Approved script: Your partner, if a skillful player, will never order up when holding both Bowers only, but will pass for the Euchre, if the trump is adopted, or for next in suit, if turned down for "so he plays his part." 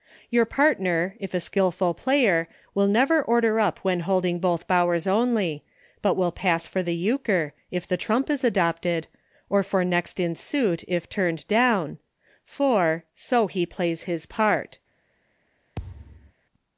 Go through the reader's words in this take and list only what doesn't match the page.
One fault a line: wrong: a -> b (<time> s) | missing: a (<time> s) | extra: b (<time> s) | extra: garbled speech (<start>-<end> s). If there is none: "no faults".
no faults